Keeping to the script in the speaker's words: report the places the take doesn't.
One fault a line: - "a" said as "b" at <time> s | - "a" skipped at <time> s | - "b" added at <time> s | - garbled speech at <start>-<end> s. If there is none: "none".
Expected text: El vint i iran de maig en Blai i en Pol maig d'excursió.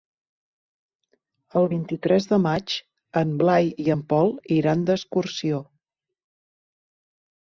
- "iran" said as "tres" at 2.0 s
- "maig" said as "iran" at 4.6 s